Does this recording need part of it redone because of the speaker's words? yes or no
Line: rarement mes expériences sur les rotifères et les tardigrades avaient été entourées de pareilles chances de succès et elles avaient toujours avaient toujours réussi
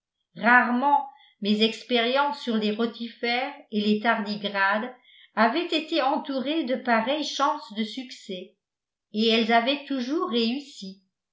yes